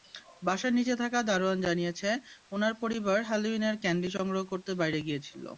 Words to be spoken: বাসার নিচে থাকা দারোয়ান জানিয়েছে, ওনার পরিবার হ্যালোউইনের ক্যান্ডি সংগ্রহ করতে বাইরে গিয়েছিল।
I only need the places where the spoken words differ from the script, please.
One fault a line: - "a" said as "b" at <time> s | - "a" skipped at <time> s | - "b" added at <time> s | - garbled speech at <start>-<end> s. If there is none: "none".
none